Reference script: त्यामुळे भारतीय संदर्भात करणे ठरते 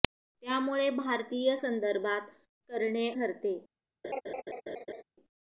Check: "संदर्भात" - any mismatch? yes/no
no